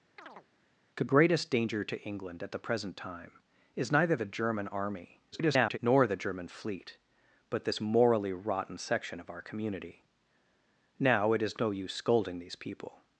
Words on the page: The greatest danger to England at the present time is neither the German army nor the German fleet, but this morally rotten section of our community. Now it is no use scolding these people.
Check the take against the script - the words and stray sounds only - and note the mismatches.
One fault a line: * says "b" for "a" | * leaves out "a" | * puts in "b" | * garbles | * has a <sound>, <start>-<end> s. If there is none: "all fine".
* has a chirp, 0.2-0.5 s
* garbles